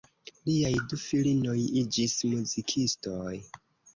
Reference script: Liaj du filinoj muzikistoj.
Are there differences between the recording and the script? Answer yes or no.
yes